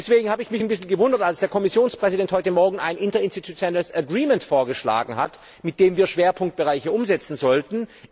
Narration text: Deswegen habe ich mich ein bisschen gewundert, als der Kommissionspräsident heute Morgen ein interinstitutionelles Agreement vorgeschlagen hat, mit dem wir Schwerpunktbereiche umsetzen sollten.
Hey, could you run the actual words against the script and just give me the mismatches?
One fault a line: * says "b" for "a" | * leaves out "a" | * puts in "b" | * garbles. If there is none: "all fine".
all fine